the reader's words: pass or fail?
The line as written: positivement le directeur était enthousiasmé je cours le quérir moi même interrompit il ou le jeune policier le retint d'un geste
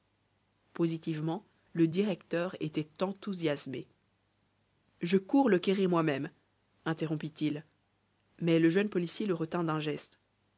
fail